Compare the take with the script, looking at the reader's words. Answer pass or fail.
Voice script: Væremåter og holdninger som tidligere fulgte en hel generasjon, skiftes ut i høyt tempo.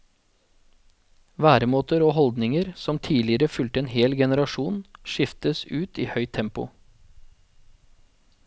pass